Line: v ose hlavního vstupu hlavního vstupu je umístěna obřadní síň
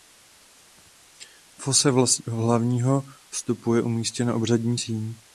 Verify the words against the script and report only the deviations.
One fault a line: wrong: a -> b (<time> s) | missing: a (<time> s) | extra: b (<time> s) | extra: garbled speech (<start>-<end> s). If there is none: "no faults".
missing: hlavního vstupu (3.7 s)